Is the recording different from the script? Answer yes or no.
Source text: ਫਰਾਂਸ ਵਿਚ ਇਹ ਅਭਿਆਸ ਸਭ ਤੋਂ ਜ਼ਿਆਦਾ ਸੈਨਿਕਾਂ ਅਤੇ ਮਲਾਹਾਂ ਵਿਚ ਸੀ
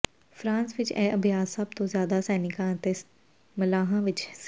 no